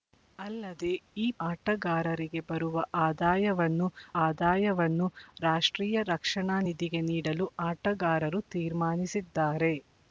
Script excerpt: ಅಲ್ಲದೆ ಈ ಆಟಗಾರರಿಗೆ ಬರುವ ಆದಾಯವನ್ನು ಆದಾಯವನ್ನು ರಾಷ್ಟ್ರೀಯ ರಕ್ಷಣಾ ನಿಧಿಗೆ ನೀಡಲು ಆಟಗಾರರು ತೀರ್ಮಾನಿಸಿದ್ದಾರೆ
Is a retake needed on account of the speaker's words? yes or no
no